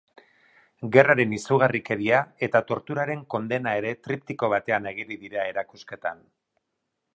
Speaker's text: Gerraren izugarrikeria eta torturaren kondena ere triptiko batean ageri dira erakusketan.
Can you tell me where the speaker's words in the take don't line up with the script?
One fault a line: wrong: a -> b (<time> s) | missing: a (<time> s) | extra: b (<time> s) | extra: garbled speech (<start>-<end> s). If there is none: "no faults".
no faults